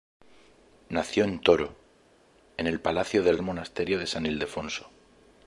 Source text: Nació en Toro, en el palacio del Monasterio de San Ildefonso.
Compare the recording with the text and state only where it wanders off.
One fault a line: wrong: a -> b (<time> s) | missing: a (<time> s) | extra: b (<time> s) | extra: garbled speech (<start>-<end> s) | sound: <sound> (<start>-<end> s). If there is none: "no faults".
no faults